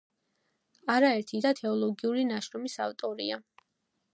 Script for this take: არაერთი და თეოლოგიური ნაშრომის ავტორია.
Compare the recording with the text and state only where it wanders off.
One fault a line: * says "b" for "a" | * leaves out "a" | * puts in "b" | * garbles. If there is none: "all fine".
all fine